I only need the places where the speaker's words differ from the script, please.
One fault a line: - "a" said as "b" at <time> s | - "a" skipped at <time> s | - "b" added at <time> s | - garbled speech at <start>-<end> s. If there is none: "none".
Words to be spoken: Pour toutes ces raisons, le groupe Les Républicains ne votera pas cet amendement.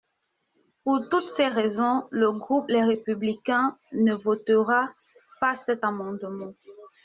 none